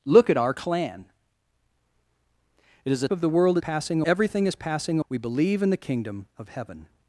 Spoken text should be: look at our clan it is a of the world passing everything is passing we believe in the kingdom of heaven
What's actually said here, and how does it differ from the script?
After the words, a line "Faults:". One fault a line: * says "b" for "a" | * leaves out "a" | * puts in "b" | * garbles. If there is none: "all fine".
look at our clan it is a of the world passing everything is passing we believe in the kingdom of heaven
Faults:
all fine